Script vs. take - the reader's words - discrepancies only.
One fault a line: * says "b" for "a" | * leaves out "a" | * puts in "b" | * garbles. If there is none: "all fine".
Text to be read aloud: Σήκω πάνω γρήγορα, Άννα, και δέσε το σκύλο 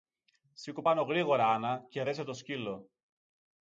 all fine